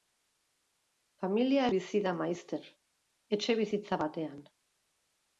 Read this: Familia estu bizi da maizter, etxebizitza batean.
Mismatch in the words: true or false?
true